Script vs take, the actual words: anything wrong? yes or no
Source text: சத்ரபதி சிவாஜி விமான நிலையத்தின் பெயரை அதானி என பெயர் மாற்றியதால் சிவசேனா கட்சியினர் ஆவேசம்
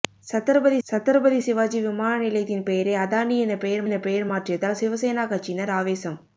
yes